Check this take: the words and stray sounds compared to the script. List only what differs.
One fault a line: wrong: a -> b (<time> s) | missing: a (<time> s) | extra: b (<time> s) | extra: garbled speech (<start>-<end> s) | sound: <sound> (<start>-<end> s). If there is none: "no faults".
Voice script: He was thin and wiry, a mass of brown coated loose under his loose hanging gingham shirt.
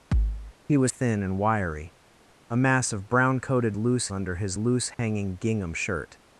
sound: thud (0.1-0.5 s)
sound: dropout (4.9-5.0 s)